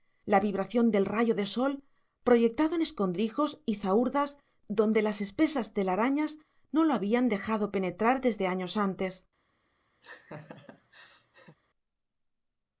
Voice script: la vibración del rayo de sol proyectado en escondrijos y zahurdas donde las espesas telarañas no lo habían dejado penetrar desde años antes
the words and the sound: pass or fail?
fail